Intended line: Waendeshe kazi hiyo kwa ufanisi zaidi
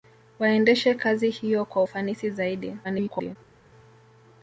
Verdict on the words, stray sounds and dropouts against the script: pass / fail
fail